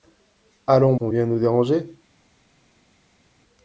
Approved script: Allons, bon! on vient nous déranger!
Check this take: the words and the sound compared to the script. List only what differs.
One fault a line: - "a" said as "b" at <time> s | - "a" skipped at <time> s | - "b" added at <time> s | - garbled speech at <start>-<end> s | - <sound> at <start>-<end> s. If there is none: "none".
- "bon" skipped at 0.9 s